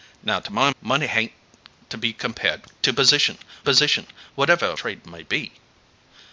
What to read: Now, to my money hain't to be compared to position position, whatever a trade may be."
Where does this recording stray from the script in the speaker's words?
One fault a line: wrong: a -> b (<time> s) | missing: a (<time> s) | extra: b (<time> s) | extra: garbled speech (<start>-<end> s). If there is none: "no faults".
no faults